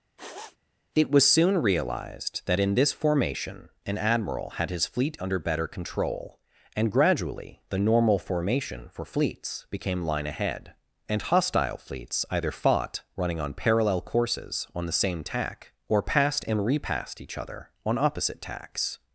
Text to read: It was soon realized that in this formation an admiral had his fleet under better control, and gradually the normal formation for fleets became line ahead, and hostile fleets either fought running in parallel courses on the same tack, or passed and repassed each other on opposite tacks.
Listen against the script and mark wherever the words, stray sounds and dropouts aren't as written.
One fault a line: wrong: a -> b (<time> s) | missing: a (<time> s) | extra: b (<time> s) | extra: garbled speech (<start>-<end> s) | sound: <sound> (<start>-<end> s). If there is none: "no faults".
sound: sniff (0.2-0.6 s)
wrong: in -> on (13.4 s)